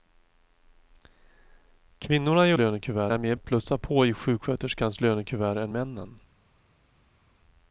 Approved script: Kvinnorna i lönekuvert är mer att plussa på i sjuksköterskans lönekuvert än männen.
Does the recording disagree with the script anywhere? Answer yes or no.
no